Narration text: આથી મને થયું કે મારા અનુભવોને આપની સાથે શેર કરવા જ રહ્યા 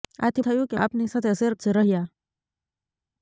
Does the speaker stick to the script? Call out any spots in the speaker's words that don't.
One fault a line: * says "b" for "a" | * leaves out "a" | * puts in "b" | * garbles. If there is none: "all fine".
* leaves out "મને"
* leaves out "મારા અનુભવોને"
* leaves out "કરવા"